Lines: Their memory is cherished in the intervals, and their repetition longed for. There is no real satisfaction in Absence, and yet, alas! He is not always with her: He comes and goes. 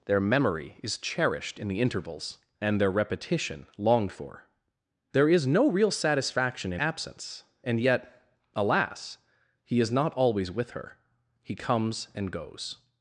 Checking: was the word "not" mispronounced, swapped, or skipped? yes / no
no